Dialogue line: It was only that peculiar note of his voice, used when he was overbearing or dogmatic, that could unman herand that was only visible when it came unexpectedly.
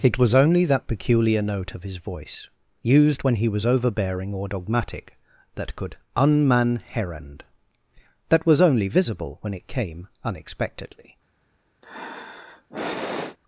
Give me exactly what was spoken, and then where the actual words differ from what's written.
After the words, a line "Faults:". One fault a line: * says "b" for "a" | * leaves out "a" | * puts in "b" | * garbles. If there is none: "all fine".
It was only that peculiar note of his voice, used when he was overbearing or dogmatic, that could unman herand that was only visible when it came unexpectedly.
Faults:
all fine